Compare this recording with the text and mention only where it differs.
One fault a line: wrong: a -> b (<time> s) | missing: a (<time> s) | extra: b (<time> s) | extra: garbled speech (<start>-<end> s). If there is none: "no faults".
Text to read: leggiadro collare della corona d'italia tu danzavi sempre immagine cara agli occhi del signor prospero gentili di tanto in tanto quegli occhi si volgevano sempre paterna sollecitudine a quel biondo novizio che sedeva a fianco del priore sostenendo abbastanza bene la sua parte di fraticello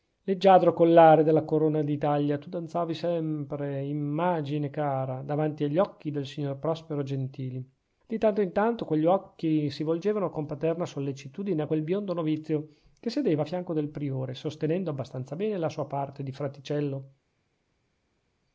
extra: davanti (5.2 s)
wrong: sempre -> con (10.3 s)